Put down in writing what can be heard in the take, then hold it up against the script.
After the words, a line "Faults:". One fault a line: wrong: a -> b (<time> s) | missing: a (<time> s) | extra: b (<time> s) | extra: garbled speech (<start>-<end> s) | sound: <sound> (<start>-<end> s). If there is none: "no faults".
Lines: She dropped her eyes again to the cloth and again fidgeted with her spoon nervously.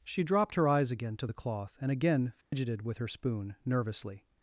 She dropped her eyes again to the cloth and again fidgeted with her spoon nervously.
Faults:
sound: dropout (2.4-2.5 s)